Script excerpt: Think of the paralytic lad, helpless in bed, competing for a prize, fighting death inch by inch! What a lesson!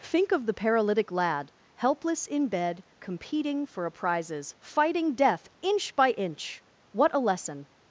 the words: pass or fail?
fail